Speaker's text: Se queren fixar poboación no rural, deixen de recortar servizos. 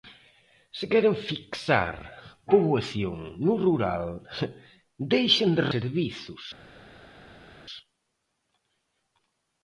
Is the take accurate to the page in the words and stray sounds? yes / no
no